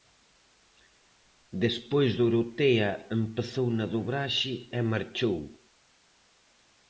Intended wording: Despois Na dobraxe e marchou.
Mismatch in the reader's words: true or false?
true